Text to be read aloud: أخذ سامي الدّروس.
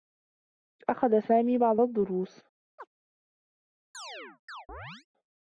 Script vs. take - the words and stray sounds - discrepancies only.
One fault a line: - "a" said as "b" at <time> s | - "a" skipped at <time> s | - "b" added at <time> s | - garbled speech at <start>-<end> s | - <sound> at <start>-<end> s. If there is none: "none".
- "بعض" added at 1.6 s
- chirp at 2.8-2.9 s
- chirp at 3.9-5.1 s